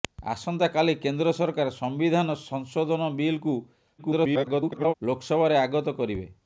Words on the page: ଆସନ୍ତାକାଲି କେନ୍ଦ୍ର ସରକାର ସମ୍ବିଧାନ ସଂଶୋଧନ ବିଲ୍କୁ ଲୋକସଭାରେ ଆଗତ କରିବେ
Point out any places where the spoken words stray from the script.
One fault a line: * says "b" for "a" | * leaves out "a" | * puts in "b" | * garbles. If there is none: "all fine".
* garbles